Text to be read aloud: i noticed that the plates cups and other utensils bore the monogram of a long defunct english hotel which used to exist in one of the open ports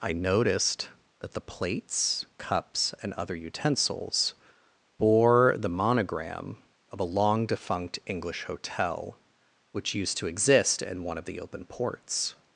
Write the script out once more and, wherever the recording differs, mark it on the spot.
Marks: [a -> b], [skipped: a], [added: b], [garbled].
i noticed that the plates cups and other utensils bore the monogram of a long defunct english hotel which used to exist in one of the open ports